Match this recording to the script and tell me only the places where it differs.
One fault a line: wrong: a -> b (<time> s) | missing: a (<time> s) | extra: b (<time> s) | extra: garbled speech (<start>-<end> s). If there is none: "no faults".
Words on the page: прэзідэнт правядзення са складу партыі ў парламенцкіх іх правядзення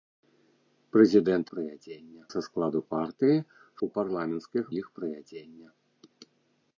no faults